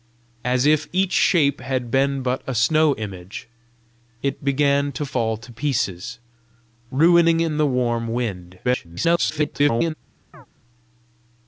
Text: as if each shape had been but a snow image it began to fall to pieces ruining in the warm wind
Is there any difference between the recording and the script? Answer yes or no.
yes